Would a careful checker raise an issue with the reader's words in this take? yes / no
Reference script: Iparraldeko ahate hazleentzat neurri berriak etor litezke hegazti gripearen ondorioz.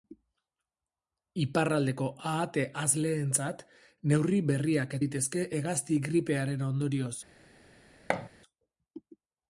yes